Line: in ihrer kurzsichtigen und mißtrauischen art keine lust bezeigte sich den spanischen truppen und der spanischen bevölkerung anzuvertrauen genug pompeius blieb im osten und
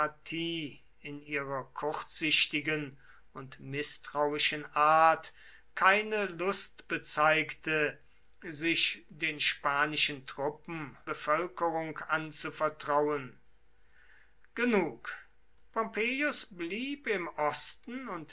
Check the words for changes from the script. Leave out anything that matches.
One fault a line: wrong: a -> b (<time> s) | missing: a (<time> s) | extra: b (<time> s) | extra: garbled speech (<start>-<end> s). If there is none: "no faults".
missing: und der spanischen (11.0 s)